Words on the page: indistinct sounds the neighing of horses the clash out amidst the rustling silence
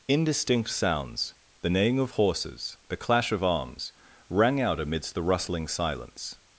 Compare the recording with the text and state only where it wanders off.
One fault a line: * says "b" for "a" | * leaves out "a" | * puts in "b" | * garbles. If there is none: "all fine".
* puts in "of arms rang"